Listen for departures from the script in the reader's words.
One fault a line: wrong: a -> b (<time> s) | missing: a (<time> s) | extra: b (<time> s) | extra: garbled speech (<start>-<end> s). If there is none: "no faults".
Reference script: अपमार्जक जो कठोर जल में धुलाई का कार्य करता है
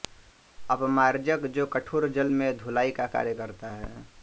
no faults